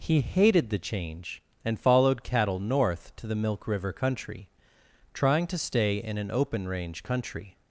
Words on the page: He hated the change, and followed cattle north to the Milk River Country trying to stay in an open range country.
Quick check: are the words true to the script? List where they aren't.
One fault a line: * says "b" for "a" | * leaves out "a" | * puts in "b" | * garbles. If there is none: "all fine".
all fine